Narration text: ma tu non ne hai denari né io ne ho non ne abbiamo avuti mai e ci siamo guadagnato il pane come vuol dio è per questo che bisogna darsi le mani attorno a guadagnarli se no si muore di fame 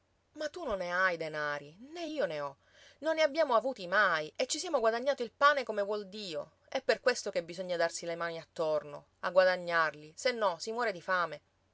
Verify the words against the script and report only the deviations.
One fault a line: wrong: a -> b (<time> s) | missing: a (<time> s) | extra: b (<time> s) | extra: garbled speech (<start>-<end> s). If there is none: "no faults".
no faults